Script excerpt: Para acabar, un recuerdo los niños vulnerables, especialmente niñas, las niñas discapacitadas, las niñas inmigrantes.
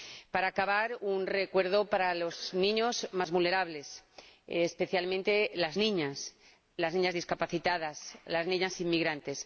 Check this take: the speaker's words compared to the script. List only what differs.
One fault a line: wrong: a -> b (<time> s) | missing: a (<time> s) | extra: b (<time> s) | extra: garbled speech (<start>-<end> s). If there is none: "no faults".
extra: para (1.9 s)
extra: más (3.1 s)
extra: las (5.6 s)